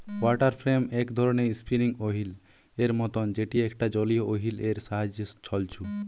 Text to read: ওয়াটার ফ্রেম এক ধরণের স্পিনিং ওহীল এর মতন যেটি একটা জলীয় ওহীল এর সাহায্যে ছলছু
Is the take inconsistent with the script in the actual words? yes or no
no